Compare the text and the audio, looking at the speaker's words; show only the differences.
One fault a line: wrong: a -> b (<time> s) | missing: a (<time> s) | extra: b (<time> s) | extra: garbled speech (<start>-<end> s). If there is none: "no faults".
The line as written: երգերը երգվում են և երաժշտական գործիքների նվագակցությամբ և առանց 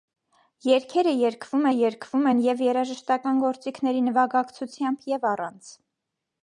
extra: երգվում (1.7 s)